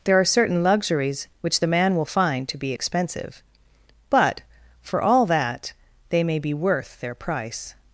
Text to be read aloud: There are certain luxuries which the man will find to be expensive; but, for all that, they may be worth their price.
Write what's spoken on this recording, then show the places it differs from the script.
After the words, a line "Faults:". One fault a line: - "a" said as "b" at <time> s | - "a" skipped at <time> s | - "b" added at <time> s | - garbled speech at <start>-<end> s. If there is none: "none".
There are certain luxuries which the man will find to be expensive; but, for all that, they may be worth their price.
Faults:
none